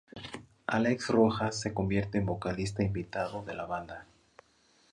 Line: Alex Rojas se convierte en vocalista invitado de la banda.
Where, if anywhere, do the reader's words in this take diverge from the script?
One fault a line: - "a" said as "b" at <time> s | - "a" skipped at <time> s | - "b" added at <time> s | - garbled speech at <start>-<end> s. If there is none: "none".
none